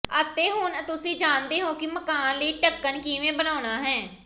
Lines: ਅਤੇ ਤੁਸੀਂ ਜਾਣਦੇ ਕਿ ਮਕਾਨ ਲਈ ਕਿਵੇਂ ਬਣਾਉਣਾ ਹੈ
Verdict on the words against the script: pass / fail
fail